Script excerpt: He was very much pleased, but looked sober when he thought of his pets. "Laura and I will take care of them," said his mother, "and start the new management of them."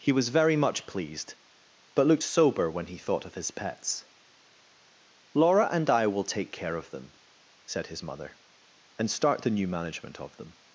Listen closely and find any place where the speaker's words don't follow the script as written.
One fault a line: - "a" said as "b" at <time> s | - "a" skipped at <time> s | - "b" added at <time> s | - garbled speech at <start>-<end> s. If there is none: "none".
none